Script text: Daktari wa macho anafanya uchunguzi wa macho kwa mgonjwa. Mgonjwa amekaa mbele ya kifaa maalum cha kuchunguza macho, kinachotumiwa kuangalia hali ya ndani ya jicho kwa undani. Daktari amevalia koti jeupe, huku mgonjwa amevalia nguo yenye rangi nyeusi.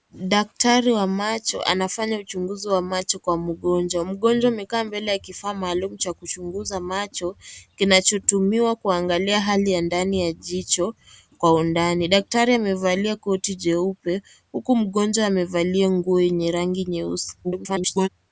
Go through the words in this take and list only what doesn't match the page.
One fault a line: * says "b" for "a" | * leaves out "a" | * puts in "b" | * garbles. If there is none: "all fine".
* garbles